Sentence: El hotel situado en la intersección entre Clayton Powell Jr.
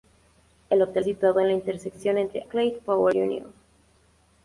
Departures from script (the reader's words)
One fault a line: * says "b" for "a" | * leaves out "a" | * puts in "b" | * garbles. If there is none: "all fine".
all fine